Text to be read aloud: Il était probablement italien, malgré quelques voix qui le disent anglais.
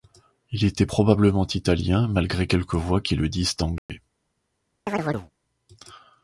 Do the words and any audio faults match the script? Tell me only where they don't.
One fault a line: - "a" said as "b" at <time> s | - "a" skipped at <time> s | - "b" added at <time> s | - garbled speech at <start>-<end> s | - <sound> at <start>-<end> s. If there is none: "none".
- dropout at 3.8-3.9 s
- chirp at 4.9-5.3 s